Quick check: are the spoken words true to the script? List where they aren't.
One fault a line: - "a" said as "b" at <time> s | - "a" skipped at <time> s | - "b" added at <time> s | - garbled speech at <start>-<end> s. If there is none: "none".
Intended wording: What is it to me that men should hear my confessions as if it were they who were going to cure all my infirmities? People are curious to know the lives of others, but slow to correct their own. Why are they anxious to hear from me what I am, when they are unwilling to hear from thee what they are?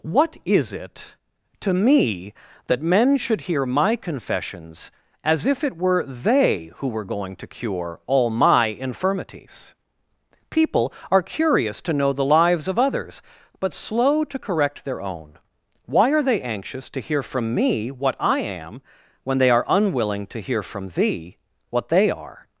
none